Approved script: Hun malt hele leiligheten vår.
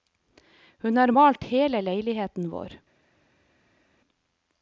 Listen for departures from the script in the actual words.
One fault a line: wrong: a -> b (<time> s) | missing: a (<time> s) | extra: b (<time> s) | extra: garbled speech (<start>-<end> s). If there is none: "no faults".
extra: har (1.0 s)